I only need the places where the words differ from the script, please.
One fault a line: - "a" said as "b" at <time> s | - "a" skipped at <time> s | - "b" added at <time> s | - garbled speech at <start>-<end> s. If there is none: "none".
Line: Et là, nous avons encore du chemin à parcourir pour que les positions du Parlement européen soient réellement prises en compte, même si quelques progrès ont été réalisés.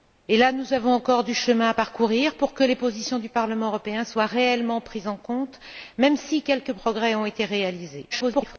- garbled speech at 8.1-8.6 s